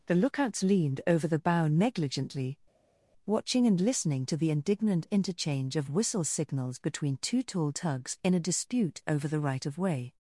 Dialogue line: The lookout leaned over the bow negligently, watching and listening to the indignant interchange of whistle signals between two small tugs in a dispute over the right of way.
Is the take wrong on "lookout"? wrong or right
wrong